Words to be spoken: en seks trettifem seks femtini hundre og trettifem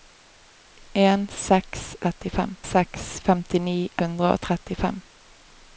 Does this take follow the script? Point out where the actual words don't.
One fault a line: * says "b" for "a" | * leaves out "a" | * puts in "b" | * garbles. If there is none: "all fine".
all fine